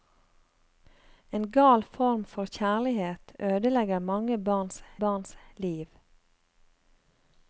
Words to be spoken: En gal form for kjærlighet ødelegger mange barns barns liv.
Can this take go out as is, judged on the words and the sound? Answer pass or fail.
pass